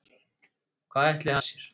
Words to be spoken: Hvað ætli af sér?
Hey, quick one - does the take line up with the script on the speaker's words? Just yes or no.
yes